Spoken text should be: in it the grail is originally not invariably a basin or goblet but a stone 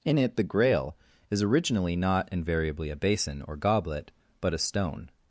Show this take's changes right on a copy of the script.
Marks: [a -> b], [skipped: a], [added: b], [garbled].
in it the grail is originally not invariably a basin or goblet but a stone